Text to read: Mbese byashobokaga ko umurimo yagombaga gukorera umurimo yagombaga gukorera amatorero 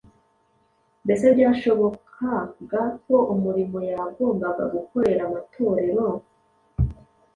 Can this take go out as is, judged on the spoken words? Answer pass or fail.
fail